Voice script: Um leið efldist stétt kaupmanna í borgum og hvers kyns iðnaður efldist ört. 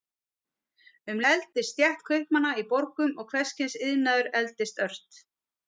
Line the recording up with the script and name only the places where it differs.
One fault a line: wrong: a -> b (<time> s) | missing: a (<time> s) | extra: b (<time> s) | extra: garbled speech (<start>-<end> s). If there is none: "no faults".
missing: leið (1.2 s)